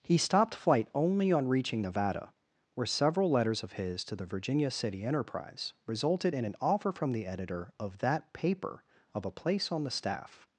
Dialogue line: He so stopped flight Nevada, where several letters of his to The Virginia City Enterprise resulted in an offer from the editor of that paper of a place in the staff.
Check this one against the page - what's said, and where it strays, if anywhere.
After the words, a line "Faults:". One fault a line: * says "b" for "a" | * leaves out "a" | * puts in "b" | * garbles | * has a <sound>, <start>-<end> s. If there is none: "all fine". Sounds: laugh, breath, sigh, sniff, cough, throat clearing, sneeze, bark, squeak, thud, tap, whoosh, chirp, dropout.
He stopped flight only on reaching Nevada, where several letters of his to The Virginia City Enterprise resulted in an offer from the editor of that paper of a place on the staff.
Faults:
* leaves out "so"
* puts in "only on reaching"
* says "on" for "in"